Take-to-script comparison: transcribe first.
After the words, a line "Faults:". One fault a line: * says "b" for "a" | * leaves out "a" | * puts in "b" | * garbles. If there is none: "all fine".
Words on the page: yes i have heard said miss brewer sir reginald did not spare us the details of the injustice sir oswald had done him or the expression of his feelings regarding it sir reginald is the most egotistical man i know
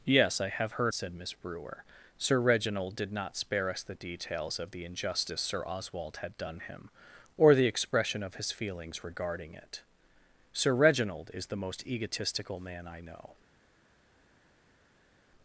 yes i have heard said miss brewer sir reginald did not spare us the details of the injustice sir oswald had done him or the expression of his feelings regarding it sir reginald is the most egotistical man i know
Faults:
all fine